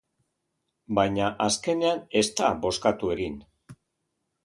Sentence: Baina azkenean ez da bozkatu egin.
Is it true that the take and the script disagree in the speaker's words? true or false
false